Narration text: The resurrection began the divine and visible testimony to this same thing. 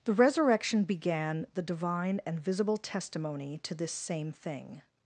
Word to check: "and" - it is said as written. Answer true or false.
true